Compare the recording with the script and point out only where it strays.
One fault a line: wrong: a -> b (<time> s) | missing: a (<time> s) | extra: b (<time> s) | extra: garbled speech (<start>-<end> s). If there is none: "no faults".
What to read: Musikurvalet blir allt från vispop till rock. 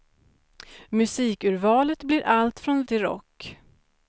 missing: vispop (2.8 s)